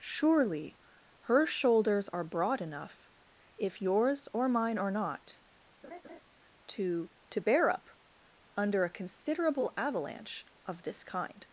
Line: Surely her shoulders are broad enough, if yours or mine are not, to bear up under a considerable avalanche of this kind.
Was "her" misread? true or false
false